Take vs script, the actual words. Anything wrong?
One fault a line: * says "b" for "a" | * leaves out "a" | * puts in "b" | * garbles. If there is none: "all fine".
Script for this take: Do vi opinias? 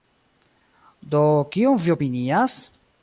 * puts in "kion"